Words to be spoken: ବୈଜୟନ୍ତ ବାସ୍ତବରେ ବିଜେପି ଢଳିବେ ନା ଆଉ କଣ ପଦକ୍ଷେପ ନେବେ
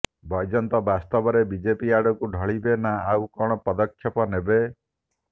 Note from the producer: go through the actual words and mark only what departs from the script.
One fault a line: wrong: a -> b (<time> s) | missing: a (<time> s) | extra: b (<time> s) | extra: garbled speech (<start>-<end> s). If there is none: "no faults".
extra: ଆଡକୁ (2.0 s)